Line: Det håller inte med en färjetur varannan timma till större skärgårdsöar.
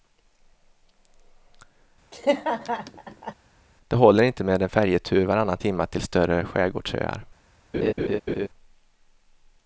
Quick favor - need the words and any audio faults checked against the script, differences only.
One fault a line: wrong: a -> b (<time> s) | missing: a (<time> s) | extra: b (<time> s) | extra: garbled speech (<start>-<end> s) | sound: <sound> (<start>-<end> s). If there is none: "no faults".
sound: laugh (2.1-3.3 s)
sound: laugh (7.7-8.5 s)